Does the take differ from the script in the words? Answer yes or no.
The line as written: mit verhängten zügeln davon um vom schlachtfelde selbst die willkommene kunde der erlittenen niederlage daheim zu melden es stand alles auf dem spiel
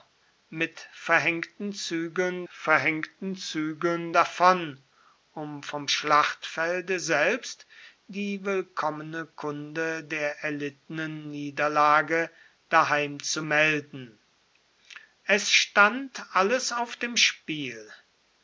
yes